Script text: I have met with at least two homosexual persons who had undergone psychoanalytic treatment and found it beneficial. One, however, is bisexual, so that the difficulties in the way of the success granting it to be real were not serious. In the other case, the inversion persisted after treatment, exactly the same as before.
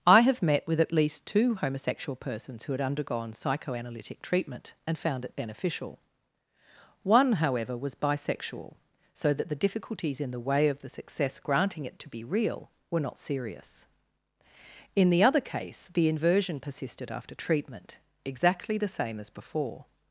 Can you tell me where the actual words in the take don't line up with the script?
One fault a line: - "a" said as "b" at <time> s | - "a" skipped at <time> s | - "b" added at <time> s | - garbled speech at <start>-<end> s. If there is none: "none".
- "is" said as "was" at 7.8 s